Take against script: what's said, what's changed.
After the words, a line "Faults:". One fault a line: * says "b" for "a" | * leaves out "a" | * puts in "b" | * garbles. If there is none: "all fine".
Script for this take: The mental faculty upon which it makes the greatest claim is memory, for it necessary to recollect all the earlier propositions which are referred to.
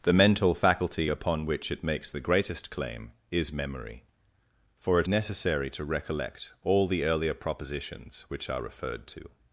The mental faculty upon which it makes the greatest claim is memory, for it necessary to recollect all the earlier propositions which are referred to.
Faults:
all fine